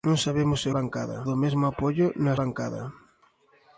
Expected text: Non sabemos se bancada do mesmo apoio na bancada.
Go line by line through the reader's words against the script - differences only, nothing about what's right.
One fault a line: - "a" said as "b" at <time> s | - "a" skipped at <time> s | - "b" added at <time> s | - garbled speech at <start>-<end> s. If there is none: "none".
none